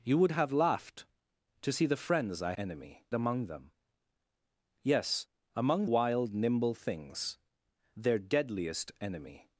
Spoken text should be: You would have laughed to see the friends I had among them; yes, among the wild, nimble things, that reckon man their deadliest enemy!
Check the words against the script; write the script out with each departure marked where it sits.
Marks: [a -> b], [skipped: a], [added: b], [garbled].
You would have laughed to see the friends I [had -> enemy] among them; yes, among [skipped: the] wild, nimble things, [skipped: that reckon man] their deadliest enemy!